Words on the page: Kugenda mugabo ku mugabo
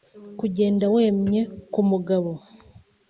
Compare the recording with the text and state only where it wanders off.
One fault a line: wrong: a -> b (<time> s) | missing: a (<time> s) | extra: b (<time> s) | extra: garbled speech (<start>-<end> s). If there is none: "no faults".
wrong: mugabo -> wemye (0.9 s)